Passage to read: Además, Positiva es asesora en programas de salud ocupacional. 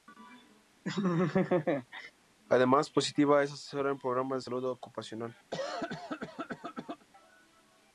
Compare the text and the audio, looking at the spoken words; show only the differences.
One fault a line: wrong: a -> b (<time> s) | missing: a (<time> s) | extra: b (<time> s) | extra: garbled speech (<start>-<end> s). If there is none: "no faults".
no faults